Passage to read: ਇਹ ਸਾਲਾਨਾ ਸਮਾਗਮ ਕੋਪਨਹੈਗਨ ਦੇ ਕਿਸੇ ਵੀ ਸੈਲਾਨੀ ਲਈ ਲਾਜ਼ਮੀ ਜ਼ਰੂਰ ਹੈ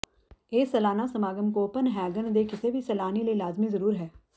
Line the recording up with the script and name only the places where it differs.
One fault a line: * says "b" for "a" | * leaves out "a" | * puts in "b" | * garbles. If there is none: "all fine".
all fine